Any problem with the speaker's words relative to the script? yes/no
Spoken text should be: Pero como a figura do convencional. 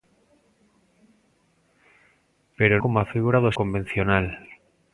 no